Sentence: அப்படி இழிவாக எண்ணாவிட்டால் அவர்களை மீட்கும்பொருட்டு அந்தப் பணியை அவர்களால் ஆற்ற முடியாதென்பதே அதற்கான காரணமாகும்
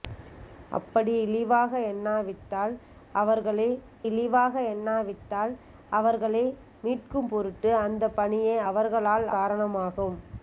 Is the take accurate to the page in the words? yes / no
no